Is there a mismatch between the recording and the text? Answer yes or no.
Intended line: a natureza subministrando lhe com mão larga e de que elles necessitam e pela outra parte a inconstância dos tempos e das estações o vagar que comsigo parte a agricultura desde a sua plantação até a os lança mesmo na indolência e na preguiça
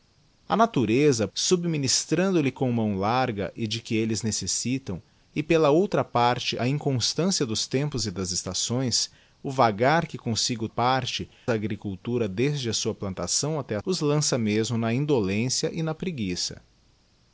no